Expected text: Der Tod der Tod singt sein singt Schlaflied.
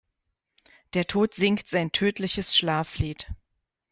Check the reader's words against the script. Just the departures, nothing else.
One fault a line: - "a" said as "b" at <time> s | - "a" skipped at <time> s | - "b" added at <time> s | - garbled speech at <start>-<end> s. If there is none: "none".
- "der Tod" skipped at 1.3 s
- "singt" said as "tödliches" at 1.9 s